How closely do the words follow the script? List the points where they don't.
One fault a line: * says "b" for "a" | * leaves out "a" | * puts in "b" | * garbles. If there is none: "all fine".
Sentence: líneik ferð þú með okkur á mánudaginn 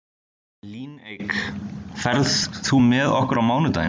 all fine